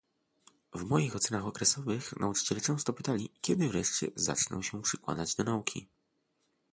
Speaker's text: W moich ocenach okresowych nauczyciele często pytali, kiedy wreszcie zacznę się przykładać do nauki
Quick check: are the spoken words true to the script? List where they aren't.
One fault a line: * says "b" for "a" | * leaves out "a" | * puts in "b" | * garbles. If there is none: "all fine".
all fine